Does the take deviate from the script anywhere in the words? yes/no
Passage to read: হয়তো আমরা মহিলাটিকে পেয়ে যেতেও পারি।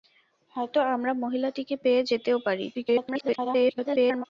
yes